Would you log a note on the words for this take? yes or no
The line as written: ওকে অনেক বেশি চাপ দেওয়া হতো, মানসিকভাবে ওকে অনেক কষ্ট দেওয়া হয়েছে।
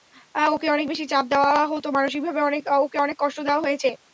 no